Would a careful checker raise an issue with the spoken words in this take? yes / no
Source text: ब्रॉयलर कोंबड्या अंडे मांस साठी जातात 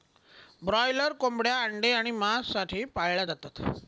yes